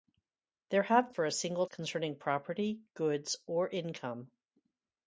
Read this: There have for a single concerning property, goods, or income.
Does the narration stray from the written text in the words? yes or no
no